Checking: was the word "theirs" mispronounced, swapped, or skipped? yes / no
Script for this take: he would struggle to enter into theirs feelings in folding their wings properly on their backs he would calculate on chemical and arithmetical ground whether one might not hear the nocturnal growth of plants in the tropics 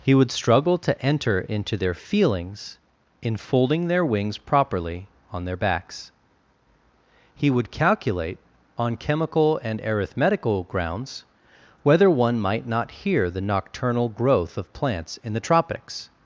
yes